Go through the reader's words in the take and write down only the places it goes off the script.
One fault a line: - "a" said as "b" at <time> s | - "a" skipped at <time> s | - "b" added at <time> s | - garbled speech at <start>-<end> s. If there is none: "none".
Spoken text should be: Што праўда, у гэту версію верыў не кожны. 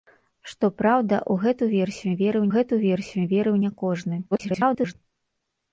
- "гэту версію верыў" added at 2.5 s
- garbled speech at 4.3-4.9 s